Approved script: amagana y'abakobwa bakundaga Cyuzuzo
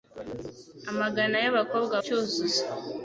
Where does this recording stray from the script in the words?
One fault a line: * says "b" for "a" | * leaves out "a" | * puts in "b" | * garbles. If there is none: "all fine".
* leaves out "bakundaga"